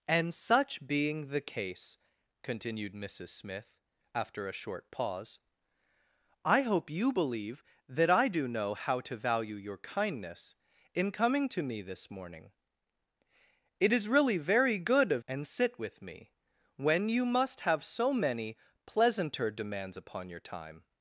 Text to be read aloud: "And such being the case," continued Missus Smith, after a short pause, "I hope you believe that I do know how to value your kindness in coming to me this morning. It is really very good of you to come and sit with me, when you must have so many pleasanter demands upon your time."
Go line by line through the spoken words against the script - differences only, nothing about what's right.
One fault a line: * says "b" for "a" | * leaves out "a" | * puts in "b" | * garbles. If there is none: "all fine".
* leaves out "you to come"